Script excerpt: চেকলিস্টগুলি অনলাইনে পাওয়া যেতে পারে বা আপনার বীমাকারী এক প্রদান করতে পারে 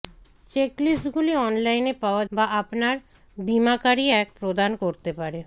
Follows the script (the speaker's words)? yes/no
no